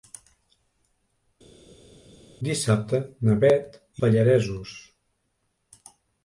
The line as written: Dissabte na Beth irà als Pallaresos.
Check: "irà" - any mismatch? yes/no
yes